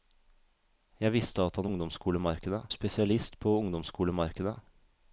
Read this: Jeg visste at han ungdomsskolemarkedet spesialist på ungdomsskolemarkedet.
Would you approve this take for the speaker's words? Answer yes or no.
yes